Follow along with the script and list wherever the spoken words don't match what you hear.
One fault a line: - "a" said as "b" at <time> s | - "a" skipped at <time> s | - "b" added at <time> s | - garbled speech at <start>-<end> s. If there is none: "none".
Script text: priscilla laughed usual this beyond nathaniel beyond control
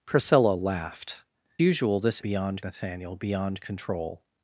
none